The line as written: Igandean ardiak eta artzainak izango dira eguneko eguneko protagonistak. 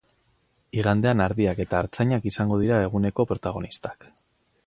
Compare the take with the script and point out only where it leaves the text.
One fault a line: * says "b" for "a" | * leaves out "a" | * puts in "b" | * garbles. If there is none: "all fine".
* leaves out "eguneko"